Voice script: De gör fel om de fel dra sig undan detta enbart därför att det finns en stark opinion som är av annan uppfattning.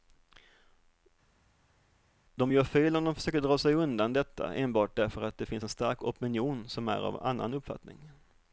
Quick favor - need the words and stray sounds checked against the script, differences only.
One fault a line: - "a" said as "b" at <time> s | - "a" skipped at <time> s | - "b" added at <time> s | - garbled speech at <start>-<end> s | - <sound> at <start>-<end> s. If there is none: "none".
- "fel" said as "försöker" at 3.2 s